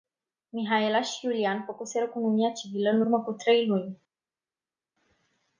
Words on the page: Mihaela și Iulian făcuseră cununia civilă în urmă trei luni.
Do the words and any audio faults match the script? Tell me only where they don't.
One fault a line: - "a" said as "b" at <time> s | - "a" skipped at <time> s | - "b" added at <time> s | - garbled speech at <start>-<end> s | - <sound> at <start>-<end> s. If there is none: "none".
- "cu" added at 3.2 s